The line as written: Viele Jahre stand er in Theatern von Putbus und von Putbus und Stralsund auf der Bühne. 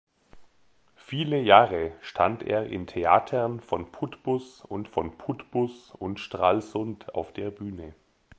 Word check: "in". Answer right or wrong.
right